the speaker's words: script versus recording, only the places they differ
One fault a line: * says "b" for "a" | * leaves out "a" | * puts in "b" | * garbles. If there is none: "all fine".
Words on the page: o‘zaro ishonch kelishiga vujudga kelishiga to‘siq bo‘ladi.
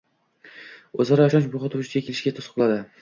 * says "muhiti" for "kelishiga"